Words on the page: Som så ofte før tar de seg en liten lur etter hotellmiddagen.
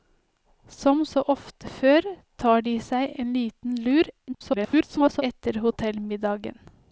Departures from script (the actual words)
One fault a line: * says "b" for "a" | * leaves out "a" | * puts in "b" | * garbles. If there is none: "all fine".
* garbles